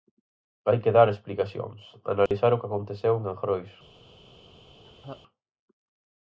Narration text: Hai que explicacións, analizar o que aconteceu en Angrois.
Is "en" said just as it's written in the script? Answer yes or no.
yes